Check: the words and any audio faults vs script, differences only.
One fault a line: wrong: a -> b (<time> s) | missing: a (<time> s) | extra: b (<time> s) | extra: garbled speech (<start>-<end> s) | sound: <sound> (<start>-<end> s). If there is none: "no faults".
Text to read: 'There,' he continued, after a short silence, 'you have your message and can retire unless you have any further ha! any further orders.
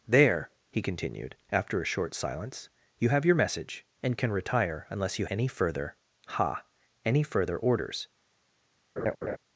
missing: have (5.3 s)
sound: laugh (9.0-9.4 s)